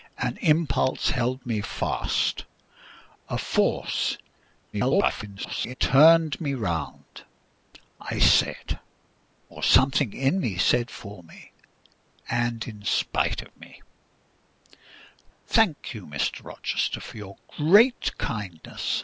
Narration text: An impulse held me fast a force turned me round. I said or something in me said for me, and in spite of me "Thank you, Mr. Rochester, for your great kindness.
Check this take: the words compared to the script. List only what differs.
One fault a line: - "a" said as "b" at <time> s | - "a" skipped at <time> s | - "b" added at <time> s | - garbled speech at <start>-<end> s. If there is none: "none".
- garbled speech at 4.7-5.7 s